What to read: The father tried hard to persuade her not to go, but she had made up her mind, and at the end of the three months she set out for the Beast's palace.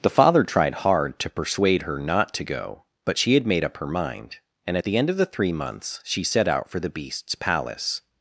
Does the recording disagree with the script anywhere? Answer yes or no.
no